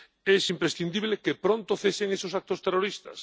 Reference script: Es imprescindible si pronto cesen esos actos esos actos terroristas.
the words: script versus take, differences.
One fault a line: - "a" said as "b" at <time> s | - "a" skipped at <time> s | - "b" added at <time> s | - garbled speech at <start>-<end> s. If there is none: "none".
- "si" said as "que" at 1.2 s
- "esos actos" skipped at 2.6 s